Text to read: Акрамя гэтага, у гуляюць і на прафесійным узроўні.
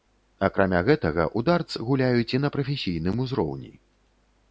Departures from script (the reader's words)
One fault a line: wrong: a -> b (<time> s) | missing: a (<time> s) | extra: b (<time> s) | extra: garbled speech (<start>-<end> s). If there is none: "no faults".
extra: дартс (1.5 s)